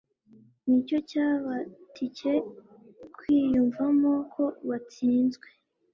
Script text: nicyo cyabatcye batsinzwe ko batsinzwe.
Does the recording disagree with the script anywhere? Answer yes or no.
yes